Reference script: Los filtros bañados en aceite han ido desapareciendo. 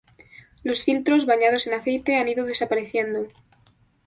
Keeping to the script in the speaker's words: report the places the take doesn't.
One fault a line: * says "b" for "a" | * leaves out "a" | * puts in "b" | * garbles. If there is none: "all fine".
all fine